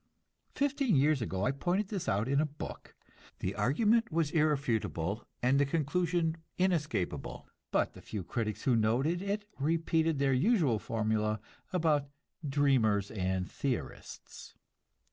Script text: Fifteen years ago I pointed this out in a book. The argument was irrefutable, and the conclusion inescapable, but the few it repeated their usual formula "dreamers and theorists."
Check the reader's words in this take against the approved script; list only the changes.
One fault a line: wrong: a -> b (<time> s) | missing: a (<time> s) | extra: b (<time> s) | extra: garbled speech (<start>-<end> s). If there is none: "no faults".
extra: critics who noted (8.2 s)
extra: about (11.7 s)